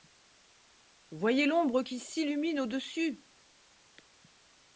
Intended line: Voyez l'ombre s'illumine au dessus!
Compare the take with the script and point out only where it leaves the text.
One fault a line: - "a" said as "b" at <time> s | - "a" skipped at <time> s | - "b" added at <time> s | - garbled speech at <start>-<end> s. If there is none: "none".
- "qui" added at 1.8 s